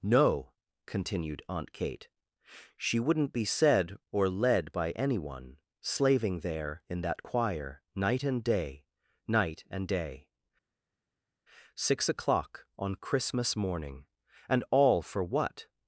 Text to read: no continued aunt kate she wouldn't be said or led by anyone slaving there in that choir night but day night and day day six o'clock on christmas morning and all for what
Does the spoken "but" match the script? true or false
false